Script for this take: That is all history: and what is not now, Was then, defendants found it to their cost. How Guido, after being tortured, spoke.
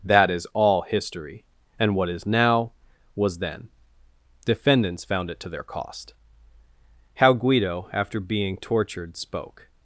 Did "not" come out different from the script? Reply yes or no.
yes